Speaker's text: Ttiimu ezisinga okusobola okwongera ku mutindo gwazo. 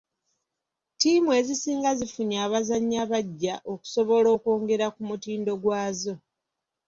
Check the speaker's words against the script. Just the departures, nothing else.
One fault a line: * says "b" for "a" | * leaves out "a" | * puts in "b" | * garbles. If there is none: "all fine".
* puts in "zifunye abazannyi abaggya"